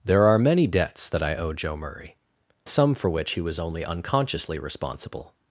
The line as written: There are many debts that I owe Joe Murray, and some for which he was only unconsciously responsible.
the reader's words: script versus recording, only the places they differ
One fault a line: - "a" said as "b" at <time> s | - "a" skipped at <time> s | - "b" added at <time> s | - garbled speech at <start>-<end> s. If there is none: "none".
- "and" skipped at 2.1 s